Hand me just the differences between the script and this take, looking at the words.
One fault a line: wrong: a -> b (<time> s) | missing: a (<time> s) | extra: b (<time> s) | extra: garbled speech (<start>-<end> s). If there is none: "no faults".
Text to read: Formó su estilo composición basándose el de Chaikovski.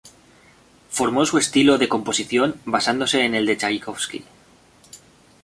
extra: de (1.8 s)
extra: en (3.2 s)